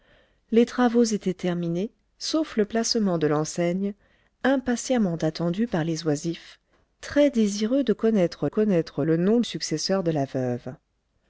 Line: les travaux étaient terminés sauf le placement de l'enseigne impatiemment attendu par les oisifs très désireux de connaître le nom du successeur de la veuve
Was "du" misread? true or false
true